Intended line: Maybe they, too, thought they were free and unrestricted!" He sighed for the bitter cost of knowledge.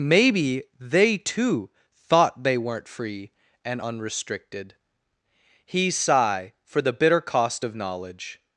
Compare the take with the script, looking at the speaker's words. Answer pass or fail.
fail